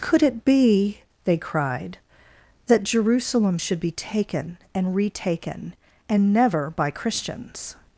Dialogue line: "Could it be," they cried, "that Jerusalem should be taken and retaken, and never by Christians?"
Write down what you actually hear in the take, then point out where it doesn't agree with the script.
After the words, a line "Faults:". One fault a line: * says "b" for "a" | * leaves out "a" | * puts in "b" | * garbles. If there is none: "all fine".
"Could it be," they cried, "that Jerusalem should be taken and retaken, and never by Christians?"
Faults:
all fine